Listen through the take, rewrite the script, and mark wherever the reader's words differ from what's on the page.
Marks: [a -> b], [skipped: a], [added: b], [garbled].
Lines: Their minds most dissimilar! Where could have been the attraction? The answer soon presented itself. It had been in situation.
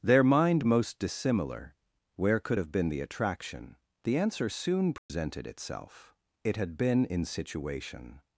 Their [minds -> mind] most dissimilar! Where could have been the attraction? The answer soon presented itself. It had been in situation.